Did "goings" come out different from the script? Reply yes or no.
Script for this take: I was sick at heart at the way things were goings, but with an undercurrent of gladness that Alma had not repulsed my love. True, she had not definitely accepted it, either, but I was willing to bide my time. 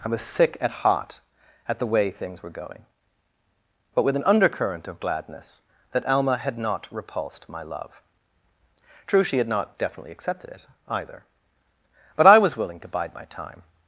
yes